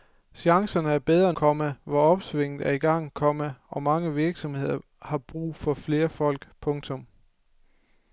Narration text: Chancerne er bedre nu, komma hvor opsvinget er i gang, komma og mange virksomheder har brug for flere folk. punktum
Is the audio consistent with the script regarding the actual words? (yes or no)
no